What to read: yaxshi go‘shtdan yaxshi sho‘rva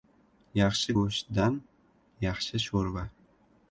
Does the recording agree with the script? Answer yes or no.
yes